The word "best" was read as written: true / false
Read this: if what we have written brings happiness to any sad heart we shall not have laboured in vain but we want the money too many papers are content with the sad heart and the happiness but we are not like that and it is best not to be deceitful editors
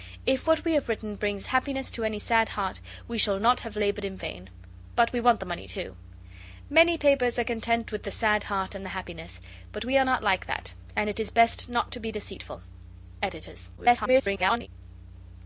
true